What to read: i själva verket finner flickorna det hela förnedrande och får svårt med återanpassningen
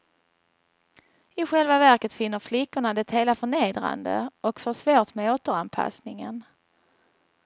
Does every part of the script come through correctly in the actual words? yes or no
yes